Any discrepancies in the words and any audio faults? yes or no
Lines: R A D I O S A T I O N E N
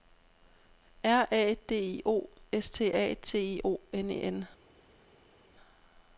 yes